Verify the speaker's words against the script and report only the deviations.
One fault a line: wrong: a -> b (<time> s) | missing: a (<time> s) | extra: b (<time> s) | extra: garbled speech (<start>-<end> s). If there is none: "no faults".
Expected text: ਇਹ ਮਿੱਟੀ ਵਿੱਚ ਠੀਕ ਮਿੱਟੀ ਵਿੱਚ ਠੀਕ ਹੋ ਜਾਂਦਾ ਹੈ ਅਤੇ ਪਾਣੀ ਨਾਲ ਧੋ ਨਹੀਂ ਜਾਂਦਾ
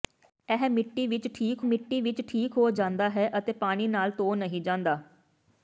no faults